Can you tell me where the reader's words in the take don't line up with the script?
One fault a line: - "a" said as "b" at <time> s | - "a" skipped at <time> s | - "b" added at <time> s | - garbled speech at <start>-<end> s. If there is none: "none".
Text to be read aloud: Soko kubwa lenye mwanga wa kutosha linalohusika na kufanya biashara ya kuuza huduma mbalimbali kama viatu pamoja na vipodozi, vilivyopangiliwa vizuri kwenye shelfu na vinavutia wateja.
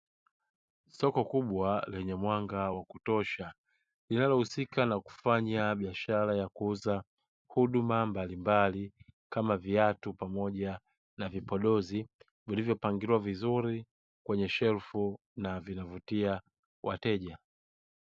none